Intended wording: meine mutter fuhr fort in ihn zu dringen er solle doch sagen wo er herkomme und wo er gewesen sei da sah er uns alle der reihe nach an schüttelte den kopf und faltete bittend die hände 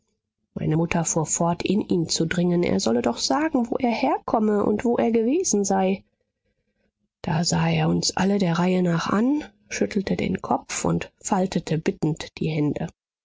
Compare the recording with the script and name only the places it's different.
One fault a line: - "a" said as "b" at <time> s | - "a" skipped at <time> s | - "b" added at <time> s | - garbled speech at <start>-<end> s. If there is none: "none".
none